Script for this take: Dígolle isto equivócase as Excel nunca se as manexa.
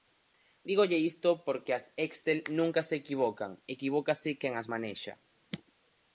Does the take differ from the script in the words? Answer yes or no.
yes